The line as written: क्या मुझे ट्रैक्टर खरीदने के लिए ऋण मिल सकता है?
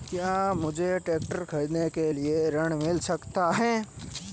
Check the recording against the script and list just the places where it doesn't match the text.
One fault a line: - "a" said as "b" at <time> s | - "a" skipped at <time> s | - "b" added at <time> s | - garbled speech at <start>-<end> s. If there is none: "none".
none